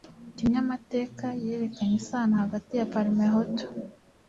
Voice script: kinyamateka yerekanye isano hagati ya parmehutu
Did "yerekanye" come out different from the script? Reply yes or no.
no